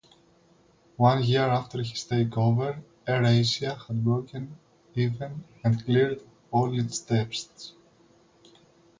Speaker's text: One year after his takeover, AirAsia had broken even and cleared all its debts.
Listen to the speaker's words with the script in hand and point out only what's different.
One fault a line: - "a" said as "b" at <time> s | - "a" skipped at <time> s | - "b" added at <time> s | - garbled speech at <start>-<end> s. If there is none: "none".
none